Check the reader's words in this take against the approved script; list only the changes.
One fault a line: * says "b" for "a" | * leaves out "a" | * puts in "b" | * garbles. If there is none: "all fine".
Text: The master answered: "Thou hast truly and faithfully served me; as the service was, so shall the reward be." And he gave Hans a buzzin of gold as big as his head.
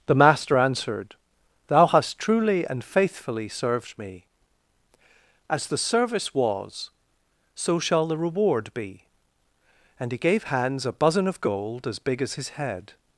all fine